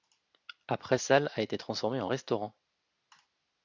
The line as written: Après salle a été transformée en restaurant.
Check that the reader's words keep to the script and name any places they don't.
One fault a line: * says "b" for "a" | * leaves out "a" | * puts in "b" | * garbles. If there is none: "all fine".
all fine